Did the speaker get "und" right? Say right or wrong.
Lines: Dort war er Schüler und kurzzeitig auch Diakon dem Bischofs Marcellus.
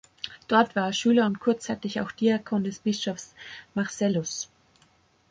right